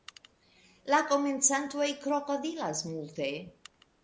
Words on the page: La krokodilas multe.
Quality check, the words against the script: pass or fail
fail